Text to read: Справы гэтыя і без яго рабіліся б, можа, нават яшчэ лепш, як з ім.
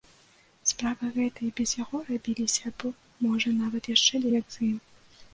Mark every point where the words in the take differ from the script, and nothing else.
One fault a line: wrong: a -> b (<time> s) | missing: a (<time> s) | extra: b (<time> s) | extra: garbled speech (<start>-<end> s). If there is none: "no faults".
missing: лепш (4.2 s)